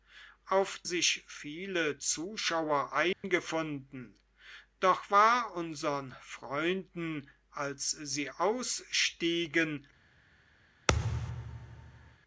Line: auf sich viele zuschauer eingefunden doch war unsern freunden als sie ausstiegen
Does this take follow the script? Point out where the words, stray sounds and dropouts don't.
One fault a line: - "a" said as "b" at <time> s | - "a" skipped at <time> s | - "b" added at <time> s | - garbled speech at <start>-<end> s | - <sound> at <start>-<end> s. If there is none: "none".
- dropout at 3.1-3.2 s
- thud at 10.9-12.2 s